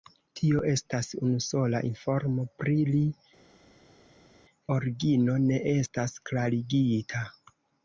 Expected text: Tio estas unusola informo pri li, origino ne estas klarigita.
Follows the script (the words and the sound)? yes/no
yes